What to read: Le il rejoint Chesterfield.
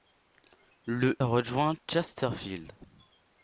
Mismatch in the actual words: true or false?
true